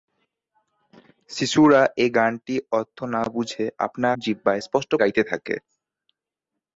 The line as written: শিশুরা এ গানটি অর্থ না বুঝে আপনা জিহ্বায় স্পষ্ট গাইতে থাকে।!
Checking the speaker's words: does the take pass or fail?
pass